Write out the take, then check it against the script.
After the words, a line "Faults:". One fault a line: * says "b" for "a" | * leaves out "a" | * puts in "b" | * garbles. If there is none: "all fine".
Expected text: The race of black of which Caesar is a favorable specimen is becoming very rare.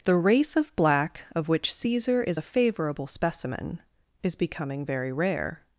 The race of black of which Caesar is a favorable specimen is becoming very rare.
Faults:
all fine